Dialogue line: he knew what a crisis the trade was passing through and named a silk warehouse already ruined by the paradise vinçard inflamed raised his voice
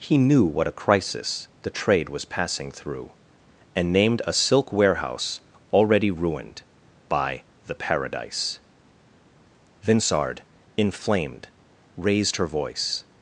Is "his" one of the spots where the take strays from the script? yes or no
yes